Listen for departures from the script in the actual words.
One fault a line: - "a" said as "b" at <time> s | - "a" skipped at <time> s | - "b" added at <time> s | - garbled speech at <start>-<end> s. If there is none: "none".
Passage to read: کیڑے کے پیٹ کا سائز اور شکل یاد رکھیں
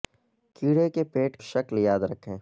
- "کا سائز اور" skipped at 1.4 s